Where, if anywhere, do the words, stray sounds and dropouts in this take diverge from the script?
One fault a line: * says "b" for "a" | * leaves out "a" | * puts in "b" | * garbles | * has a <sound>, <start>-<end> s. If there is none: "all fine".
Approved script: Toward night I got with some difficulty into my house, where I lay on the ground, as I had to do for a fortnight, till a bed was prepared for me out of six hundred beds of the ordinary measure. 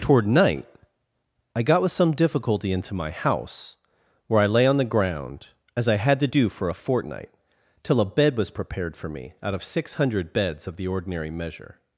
all fine